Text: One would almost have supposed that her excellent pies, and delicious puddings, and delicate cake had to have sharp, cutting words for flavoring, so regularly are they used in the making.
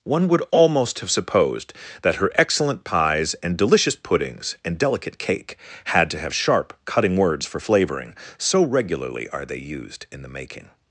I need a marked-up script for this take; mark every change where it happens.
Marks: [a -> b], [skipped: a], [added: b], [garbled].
One would almost have supposed that her excellent pies, and delicious puddings, and delicate cake had to have sharp, cutting words for flavoring, so regularly are they used in the making.